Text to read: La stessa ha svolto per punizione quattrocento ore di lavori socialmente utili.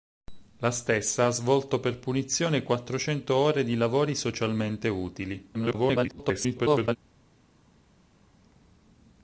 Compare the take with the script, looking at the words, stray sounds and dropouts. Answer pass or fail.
fail